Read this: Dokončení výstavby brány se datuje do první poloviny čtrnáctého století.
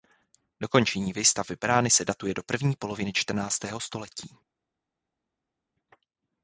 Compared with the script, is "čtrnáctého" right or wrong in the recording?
right